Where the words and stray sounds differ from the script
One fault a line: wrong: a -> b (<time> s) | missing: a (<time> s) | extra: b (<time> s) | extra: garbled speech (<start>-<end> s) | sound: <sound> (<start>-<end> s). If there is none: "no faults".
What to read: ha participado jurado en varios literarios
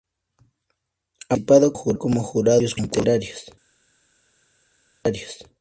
no faults